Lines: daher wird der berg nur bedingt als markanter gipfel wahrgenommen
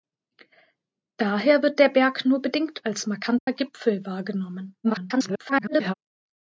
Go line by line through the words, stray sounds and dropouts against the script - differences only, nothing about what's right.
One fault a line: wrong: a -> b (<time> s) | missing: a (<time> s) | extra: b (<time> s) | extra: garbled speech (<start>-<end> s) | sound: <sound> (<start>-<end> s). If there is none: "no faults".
sound: dropout (3.4-3.5 s)
extra: garbled speech (4.8-5.9 s)